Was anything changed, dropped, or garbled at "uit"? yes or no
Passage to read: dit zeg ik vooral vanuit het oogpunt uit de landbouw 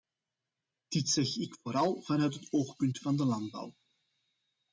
yes